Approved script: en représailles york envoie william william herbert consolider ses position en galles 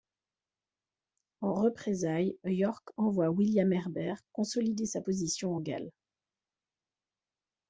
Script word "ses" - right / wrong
wrong